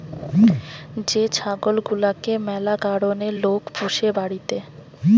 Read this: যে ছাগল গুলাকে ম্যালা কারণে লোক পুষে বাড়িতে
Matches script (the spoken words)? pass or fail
pass